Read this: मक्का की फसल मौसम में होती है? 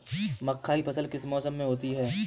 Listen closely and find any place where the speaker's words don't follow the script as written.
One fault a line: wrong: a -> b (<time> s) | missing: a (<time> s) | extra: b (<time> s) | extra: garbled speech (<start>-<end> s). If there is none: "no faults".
extra: किस (1.1 s)